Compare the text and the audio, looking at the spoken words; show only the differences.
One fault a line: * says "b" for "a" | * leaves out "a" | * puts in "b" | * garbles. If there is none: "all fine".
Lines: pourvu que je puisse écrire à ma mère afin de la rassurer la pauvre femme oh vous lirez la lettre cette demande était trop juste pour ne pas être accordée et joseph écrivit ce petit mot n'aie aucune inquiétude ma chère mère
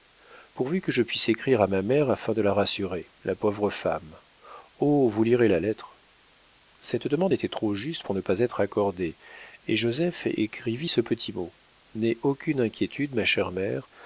all fine